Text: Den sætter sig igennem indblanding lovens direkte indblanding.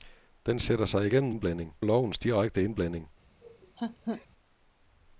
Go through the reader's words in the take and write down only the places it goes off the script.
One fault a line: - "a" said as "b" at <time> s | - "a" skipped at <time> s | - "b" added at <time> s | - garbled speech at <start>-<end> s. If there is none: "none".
none